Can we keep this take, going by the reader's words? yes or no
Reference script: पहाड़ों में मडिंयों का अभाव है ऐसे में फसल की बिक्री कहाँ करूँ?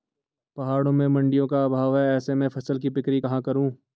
yes